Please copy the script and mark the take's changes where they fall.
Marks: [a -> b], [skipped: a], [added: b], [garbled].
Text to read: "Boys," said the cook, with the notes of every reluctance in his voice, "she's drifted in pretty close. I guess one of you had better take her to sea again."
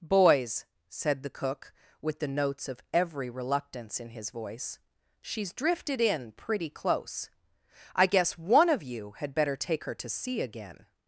"Boys," said the cook, with the notes of every reluctance in his voice, "she's drifted in pretty close. I guess one of you had better take her to sea again."